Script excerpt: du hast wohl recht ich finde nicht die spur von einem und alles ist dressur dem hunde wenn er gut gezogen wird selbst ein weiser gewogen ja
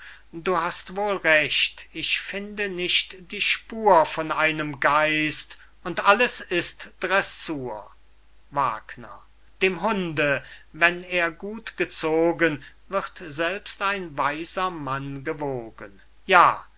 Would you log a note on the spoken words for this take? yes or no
yes